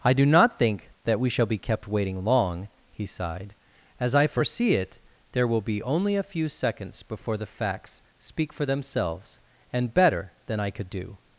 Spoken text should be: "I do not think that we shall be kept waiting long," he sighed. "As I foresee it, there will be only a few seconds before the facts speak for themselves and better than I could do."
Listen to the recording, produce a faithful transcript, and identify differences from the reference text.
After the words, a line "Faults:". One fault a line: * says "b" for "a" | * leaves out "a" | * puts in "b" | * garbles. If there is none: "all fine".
"I do not think that we shall be kept waiting long," he sighed. "As I foresee it, there will be only a few seconds before the facts speak for themselves and better than I could do."
Faults:
all fine